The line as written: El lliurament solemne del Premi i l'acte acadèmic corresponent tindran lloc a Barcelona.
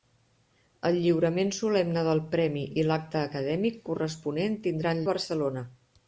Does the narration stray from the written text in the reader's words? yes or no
yes